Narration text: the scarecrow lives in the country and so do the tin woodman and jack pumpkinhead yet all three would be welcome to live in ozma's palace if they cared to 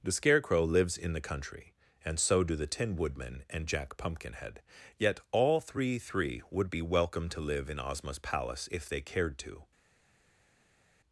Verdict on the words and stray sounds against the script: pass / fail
fail